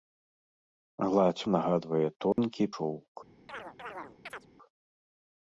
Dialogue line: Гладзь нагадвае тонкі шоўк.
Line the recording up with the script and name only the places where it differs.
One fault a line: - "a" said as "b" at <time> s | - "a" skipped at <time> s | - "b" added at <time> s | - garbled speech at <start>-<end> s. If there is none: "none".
none